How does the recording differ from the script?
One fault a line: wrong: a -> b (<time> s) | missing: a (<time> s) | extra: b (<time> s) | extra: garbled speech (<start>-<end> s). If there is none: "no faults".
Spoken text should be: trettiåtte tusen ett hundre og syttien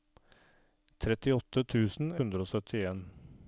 missing: ett (2.1 s)